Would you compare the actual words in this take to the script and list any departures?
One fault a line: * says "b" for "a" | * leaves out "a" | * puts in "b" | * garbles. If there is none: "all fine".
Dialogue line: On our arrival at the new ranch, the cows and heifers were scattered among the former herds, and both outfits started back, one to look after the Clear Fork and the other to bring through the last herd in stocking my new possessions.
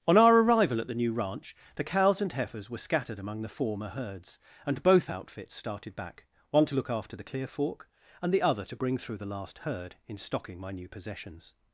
all fine